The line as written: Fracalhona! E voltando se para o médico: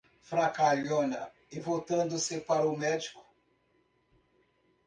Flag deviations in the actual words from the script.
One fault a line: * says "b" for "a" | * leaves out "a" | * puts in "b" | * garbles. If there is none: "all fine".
all fine